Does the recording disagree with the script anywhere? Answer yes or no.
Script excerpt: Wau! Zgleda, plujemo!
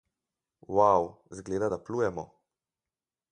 yes